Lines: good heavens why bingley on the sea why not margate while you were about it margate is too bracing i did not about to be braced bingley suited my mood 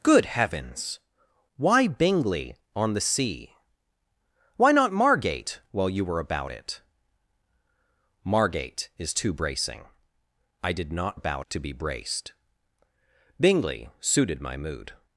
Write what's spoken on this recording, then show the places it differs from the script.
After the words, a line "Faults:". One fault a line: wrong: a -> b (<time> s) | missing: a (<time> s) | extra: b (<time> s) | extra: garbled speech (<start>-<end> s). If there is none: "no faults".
good heavens why bingley on the sea why not margate while you were about it margate is too bracing i did not about to be braced bingley suited my mood
Faults:
no faults